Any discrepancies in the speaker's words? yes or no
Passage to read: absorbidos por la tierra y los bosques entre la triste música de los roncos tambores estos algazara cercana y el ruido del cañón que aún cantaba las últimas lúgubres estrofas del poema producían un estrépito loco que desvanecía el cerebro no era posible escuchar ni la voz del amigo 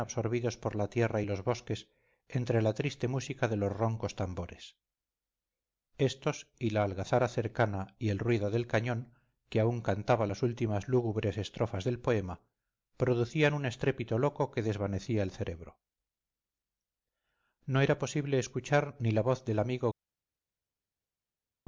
yes